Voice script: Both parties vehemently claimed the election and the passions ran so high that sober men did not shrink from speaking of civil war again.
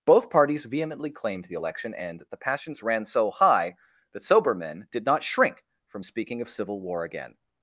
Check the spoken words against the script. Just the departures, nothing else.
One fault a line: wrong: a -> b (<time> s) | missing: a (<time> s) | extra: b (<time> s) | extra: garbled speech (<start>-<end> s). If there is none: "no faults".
no faults